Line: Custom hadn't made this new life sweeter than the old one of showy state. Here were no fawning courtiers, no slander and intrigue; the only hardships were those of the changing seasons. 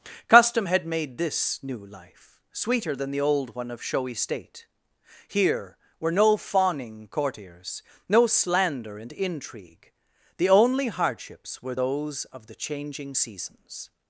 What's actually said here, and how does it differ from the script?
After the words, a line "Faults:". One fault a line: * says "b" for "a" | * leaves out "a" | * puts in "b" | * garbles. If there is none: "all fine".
Custom had made this new life sweeter than the old one of showy state. Here were no fawning courtiers, no slander and intrigue; the only hardships were those of the changing seasons.
Faults:
* says "had" for "hadn't"